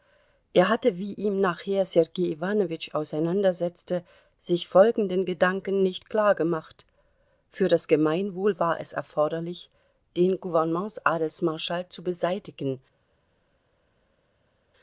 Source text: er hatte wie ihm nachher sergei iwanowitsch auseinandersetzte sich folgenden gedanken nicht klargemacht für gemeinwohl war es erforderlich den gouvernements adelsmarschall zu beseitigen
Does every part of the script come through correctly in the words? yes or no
no